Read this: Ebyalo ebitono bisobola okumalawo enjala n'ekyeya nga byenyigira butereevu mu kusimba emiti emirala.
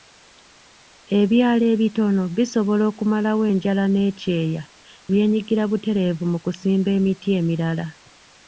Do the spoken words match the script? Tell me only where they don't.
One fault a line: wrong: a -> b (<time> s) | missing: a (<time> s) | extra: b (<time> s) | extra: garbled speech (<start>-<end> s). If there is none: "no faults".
missing: nga (4.6 s)